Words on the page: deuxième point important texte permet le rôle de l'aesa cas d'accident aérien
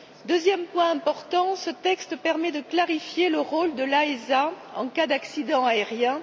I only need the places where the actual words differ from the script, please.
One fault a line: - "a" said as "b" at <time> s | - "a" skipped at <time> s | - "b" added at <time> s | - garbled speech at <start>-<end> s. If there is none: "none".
- "ce" added at 1.6 s
- "de clarifier" added at 2.5 s
- "en" added at 4.8 s